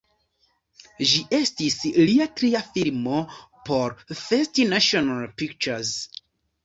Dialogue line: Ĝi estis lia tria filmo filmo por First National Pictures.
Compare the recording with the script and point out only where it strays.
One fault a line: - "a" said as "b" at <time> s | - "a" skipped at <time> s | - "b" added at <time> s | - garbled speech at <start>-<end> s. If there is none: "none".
- "filmo" skipped at 3.2 s